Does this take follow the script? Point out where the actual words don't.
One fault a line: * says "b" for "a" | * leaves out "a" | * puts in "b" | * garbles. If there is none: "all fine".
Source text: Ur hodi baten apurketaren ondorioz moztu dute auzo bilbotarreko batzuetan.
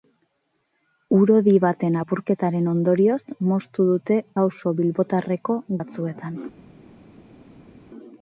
all fine